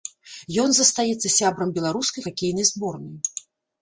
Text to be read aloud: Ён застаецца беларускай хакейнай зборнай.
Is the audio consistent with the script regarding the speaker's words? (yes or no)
no